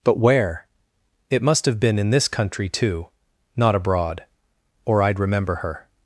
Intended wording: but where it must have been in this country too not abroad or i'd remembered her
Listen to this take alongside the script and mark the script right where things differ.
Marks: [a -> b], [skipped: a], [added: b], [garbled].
but where it must have been in this country too not abroad or i'd [remembered -> remember] her